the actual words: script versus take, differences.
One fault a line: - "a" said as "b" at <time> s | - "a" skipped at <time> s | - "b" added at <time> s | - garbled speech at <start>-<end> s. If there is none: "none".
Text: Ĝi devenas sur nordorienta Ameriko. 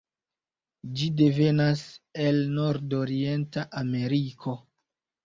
- "sur" said as "el" at 2.2 s